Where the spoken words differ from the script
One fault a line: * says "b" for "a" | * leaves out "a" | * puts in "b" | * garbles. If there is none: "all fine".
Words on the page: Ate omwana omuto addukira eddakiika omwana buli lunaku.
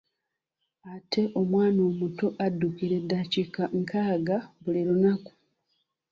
* says "nkaaga" for "omwana"